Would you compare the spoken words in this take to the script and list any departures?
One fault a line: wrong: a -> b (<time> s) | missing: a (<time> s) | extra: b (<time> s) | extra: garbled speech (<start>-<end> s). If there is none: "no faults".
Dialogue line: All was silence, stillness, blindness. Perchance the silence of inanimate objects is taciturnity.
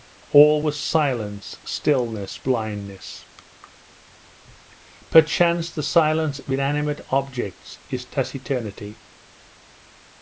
no faults